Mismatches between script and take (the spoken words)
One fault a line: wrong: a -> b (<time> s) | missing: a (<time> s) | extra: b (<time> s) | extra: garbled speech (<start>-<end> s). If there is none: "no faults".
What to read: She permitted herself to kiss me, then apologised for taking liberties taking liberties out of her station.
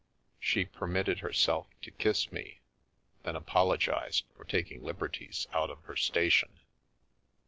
missing: taking liberties (5.5 s)